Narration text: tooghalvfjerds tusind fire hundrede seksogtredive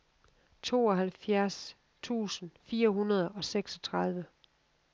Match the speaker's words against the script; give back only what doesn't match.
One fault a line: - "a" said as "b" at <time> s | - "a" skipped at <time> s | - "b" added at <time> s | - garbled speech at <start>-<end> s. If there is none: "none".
- "og" added at 3.3 s